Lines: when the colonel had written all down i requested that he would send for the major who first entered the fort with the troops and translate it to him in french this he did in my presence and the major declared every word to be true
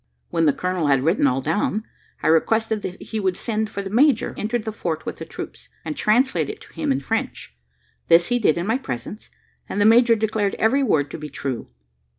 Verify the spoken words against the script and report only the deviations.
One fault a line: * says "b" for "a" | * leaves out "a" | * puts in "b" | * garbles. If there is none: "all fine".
* leaves out "who first"